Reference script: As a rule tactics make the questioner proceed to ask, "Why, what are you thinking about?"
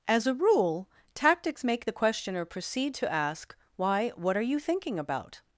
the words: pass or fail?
pass